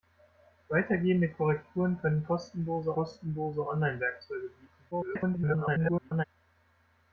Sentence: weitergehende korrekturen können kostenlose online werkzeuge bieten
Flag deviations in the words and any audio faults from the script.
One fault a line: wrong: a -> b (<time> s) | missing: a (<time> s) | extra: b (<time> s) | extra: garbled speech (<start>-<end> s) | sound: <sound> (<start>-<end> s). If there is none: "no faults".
extra: kostenlose (2.9 s)
extra: garbled speech (4.9-6.2 s)